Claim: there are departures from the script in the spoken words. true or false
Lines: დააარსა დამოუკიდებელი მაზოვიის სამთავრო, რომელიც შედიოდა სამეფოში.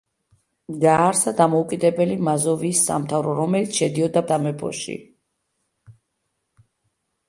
false